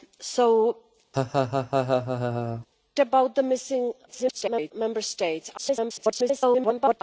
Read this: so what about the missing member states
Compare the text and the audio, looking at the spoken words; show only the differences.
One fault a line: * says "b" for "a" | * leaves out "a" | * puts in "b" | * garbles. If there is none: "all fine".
* leaves out "what"
* garbles
* garbles